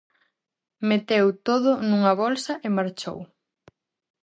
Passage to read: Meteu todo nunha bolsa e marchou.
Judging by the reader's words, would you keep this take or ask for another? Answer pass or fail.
pass